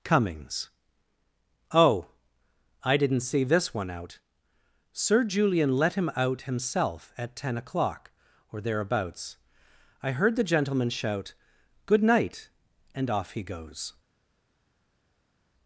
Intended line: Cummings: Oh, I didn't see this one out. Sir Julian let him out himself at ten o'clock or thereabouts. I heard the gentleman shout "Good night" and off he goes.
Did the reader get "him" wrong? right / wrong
right